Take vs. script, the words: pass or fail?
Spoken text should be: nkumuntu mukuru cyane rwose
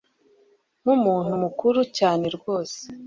pass